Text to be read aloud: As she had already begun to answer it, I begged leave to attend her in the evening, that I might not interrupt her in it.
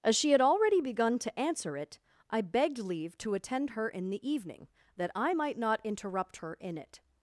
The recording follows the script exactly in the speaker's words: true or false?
true